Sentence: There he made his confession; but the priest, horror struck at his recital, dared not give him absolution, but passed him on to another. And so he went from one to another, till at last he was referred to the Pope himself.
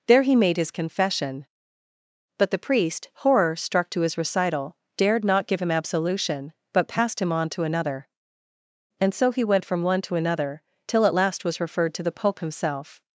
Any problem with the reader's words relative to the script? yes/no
yes